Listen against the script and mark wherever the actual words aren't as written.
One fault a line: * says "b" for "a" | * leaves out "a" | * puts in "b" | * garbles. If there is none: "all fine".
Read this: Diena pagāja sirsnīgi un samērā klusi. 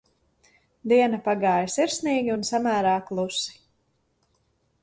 all fine